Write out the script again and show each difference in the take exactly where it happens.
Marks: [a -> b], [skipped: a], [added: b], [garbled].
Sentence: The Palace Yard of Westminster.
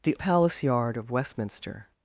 The Palace Yard of Westminster.